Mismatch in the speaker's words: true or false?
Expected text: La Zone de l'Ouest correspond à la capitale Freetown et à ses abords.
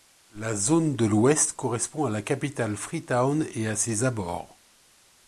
false